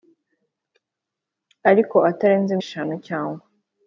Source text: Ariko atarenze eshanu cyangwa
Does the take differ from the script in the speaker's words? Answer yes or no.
no